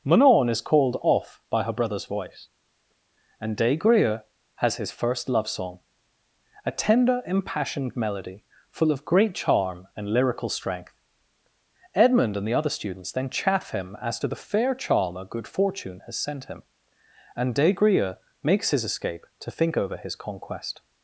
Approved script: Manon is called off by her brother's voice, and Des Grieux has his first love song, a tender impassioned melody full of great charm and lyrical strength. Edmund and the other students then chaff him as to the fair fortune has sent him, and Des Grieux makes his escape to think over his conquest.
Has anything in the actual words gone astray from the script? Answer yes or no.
yes